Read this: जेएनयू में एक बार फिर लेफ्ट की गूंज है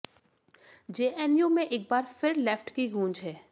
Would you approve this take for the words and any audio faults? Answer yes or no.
yes